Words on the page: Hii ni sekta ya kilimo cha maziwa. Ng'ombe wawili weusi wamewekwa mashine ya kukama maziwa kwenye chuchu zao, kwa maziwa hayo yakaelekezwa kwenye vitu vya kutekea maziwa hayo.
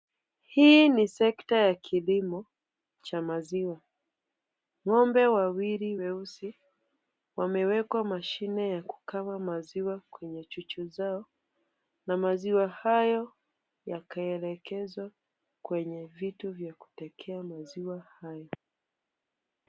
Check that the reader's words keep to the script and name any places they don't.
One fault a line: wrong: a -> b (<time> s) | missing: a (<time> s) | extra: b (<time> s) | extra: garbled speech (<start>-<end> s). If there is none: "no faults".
wrong: kwa -> na (12.1 s)